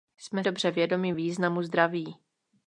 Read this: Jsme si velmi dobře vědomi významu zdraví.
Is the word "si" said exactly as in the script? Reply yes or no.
no